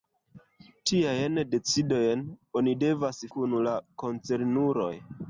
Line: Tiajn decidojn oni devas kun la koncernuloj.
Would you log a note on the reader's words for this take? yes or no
no